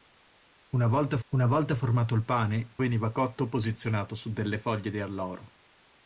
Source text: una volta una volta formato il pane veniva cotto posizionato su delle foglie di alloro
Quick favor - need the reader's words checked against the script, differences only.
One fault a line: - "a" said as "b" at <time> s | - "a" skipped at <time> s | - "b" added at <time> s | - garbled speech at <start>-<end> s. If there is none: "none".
none